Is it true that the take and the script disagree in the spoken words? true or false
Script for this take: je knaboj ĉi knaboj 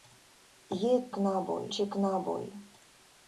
false